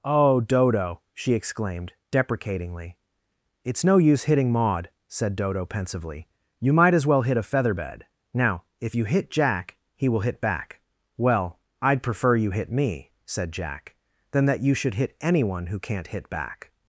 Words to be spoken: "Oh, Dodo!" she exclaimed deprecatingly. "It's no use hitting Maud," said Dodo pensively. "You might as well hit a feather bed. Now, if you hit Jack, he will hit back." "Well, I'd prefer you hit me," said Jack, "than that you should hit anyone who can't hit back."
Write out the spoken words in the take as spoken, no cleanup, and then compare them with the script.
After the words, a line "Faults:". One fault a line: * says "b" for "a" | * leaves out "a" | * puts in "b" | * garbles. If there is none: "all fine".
"Oh, Dodo!" she exclaimed deprecatingly. "It's no use hitting Maud," said Dodo pensively. "You might as well hit a feather bed. Now, if you hit Jack, he will hit back." "Well, I'd prefer you hit me," said Jack, "than that you should hit anyone who can't hit back."
Faults:
all fine